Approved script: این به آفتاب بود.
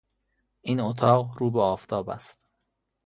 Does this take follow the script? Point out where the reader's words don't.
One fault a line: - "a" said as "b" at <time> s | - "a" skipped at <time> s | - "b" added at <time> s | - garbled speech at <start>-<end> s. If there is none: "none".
- "اتاق رو" added at 0.8 s
- "بود" said as "است" at 2.1 s